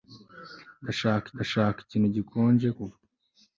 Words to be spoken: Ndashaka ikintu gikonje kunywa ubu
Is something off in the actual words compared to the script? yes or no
yes